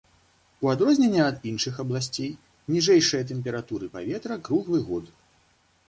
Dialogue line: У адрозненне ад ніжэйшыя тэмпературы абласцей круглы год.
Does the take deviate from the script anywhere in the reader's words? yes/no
yes